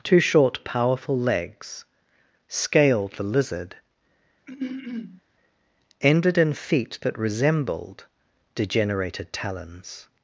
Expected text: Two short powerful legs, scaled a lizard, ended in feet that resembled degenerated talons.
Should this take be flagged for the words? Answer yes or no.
no